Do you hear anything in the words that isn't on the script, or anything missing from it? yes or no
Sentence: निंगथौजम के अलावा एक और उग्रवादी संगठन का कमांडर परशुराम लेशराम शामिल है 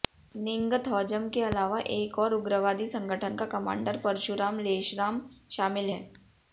no